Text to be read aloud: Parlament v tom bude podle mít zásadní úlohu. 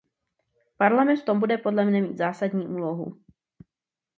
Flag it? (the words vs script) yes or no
yes